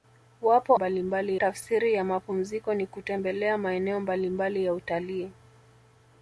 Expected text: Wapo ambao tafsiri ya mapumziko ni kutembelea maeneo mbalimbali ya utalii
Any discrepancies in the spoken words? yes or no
yes